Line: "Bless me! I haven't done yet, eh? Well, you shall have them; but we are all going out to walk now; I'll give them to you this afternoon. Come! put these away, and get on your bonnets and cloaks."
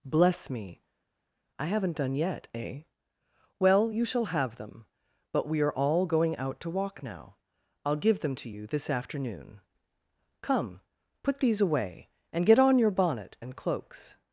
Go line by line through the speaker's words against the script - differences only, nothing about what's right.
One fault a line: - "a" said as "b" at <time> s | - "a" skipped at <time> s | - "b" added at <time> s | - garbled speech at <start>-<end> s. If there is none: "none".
- "bonnets" said as "bonnet" at 12.9 s